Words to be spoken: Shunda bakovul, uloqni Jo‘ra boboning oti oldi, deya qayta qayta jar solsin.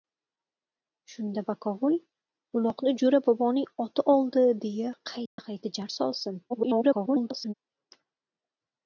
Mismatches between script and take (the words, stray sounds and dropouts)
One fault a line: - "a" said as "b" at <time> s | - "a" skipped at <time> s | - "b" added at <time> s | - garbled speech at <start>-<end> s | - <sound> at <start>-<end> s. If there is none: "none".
- dropout at 5.3-5.4 s
- garbled speech at 6.5-7.5 s